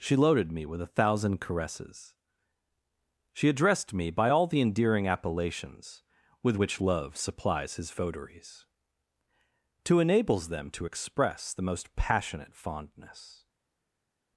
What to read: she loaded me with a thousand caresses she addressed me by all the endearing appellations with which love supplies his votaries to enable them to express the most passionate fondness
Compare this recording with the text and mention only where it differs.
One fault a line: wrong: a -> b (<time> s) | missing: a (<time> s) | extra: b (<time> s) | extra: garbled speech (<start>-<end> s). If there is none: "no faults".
wrong: enable -> enables (10.0 s)